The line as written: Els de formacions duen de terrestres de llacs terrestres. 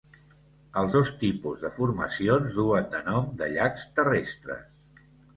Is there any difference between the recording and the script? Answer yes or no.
yes